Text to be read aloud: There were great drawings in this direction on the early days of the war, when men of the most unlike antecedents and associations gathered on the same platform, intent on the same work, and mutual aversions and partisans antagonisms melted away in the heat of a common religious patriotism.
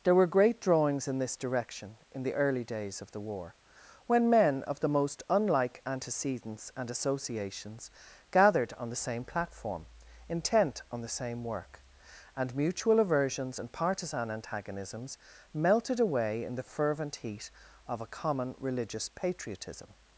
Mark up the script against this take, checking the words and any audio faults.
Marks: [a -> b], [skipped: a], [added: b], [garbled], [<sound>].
There were great drawings in this direction [on -> in] the early days of the war, when men of the most unlike antecedents and associations gathered on the same platform, intent on the same work, and mutual aversions and [partisans -> partisan] antagonisms melted away in the [added: fervent] heat of a common religious patriotism.